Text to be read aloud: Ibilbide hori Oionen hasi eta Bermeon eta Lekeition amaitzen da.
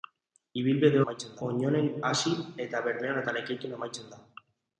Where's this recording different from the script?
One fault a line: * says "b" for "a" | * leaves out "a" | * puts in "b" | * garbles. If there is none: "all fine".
* says "amaitzen" for "hori"